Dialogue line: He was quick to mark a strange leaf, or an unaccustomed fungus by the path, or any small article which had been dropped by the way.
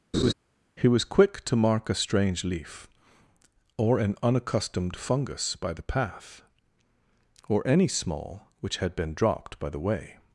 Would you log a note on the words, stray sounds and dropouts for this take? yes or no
yes